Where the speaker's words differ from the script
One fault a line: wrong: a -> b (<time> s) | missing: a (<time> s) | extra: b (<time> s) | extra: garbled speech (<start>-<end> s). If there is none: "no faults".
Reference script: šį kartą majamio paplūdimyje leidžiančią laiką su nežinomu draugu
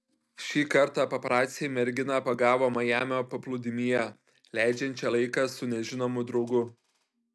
extra: paparaciai merginą pagavo (1.1 s)